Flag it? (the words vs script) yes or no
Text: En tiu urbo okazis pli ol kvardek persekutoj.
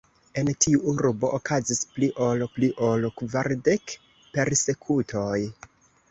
yes